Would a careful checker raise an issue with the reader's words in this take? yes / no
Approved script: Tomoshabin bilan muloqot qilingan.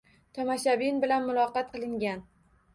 no